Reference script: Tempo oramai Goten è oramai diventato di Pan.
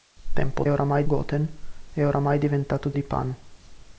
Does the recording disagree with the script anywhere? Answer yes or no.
no